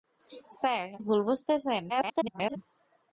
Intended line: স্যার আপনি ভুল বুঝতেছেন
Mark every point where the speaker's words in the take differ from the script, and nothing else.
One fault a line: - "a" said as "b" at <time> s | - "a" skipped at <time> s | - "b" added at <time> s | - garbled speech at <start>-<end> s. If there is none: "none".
- "আপনি" skipped at 0.9 s
- garbled speech at 1.9-2.6 s